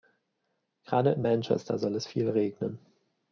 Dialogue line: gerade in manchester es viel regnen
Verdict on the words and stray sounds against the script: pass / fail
fail